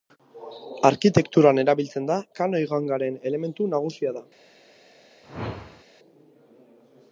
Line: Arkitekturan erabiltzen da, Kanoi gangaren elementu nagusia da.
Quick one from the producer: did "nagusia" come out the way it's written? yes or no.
yes